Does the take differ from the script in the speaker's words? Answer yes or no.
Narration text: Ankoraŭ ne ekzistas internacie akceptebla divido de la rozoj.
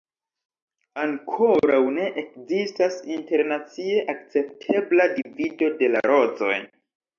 no